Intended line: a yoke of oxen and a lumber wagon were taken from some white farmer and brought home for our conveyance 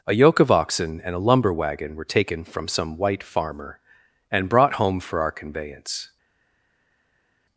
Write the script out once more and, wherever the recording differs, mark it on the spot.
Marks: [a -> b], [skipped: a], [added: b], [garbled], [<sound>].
a yoke of oxen and a lumber wagon were taken from some white farmer and brought home for our conveyance